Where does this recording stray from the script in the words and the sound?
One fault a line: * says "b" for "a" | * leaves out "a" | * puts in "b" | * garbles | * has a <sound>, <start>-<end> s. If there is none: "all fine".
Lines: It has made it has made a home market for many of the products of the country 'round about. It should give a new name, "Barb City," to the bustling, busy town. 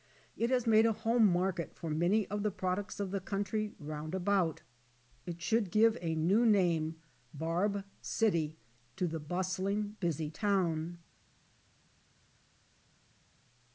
* leaves out "it has made"